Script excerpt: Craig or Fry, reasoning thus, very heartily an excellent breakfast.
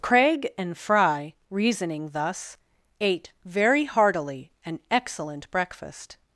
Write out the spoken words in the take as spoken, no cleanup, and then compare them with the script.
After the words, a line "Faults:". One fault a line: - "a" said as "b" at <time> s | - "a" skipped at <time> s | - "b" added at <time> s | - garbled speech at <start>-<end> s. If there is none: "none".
Craig and Fry, reasoning thus, ate very heartily an excellent breakfast.
Faults:
- "or" said as "and" at 0.6 s
- "ate" added at 3.0 s